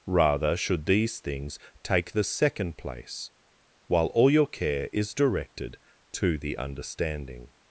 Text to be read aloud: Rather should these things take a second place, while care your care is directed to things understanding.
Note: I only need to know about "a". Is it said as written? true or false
false